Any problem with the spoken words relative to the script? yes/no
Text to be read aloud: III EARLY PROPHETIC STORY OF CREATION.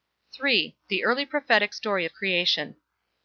yes